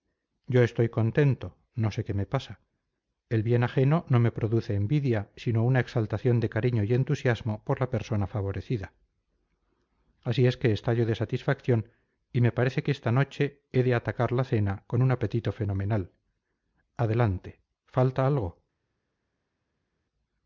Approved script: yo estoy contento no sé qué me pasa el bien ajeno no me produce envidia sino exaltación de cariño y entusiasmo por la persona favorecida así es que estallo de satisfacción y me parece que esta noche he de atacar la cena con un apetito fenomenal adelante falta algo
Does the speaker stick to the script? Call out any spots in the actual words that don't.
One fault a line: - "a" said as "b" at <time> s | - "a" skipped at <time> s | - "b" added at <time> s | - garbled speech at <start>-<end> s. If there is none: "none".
- "una" added at 5.6 s